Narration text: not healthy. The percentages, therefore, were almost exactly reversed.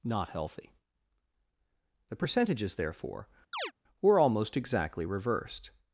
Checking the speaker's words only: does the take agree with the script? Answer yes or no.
yes